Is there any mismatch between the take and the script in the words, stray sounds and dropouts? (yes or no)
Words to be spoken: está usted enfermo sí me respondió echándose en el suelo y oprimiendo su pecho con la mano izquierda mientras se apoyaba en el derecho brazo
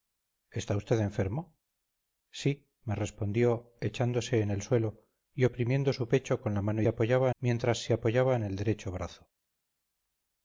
yes